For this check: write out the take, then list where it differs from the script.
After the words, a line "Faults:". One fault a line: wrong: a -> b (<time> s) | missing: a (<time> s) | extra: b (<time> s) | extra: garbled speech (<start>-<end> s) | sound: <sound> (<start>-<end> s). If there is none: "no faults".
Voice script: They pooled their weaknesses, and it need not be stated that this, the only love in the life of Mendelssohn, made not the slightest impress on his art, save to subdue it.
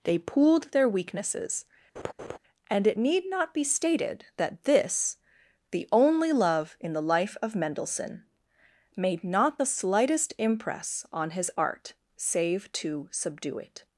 They pooled their weaknesses, and it need not be stated that this, the only love in the life of Mendelssohn, made not the slightest impress on his art, save to subdue it.
Faults:
sound: laugh (2.0-2.4 s)